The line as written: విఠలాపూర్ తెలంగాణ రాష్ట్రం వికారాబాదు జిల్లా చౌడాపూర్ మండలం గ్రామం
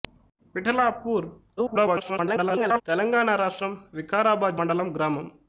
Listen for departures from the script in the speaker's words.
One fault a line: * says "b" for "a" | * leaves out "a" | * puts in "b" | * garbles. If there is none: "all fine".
* garbles
* leaves out "జిల్లా చౌడాపూర్"